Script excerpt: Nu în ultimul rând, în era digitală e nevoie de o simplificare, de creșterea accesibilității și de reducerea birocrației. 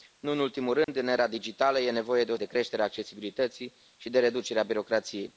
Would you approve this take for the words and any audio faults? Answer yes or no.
no